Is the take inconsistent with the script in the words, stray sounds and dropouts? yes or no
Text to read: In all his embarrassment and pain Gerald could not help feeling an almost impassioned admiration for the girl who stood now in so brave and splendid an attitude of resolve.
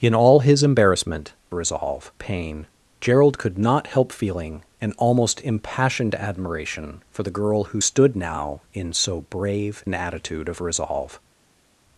yes